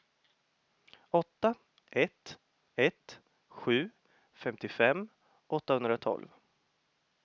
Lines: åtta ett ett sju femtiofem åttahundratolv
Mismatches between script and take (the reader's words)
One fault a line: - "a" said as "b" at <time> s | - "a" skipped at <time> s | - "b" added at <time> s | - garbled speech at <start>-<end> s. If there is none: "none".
none